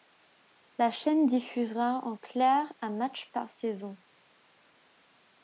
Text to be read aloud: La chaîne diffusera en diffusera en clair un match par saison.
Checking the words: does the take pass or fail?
fail